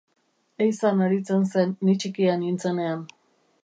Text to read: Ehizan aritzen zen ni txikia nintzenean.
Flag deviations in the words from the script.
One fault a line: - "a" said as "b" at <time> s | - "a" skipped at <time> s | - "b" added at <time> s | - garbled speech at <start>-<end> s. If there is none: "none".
none